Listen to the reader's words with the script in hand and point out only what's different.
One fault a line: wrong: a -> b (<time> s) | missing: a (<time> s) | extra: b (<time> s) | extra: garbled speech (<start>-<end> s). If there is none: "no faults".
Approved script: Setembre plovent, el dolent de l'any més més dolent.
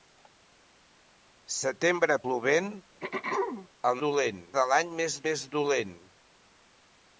no faults